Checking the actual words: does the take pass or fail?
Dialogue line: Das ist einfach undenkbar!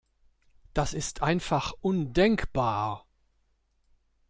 pass